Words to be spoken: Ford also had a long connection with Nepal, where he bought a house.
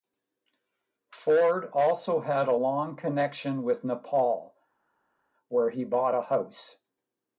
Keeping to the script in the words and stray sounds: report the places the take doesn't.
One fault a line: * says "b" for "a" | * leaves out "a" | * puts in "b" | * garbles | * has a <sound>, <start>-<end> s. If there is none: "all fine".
all fine